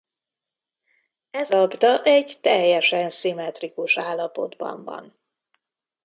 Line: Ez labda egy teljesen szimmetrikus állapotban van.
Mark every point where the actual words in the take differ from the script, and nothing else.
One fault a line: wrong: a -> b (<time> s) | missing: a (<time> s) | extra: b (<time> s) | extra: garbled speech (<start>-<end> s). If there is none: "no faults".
no faults